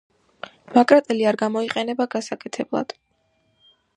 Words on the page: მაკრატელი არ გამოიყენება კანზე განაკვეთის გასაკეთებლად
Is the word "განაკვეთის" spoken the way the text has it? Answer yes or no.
no